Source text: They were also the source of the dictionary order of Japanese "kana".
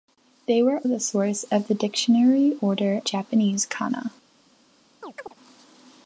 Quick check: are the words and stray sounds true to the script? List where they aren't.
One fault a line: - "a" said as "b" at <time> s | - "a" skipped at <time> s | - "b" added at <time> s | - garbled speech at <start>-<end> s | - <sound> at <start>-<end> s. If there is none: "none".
- "also" skipped at 0.8 s
- "of" skipped at 3.0 s
- chirp at 5.0-5.4 s